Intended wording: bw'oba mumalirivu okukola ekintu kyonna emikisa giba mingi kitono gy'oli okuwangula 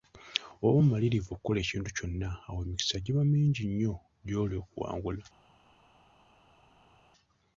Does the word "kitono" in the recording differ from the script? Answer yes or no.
yes